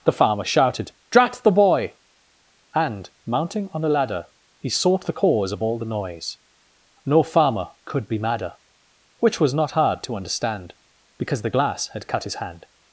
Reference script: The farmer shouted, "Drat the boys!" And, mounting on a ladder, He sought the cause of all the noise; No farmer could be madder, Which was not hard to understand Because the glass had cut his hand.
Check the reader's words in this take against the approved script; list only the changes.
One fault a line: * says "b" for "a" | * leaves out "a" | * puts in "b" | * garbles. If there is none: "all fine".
* says "boy" for "boys"